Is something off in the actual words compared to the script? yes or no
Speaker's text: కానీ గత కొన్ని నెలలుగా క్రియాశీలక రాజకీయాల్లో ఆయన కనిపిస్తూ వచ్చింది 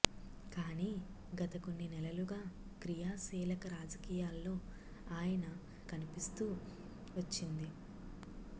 no